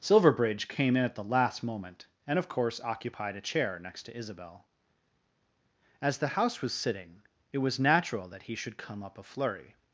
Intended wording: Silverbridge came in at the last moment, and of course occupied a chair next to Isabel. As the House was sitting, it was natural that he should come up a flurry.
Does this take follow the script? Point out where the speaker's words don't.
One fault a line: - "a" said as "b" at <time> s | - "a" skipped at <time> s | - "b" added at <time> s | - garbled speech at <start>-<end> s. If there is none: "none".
none